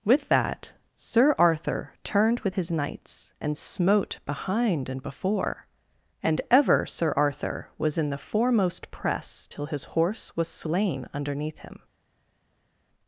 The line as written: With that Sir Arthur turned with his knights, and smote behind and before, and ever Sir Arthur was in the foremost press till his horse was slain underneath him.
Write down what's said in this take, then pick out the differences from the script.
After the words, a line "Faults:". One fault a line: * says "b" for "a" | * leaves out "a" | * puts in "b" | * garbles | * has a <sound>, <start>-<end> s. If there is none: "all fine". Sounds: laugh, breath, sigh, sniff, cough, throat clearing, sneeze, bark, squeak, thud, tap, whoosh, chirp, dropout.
With that Sir Arthur turned with his knights, and smote behind and before, and ever Sir Arthur was in the foremost press till his horse was slain underneath him.
Faults:
all fine